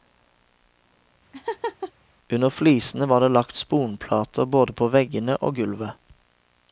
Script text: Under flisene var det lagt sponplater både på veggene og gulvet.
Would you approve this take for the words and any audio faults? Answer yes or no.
no